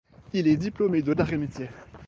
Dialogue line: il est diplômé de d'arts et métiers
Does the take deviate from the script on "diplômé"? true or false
false